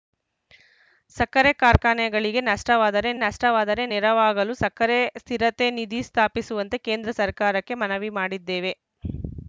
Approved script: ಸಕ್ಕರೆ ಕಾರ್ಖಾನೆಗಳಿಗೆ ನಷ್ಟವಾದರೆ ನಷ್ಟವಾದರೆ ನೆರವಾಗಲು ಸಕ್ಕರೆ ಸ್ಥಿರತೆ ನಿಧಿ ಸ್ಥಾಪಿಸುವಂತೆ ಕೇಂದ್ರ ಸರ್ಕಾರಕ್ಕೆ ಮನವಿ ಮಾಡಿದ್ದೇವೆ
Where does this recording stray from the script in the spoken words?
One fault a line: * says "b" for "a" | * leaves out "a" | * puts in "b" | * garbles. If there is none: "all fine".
all fine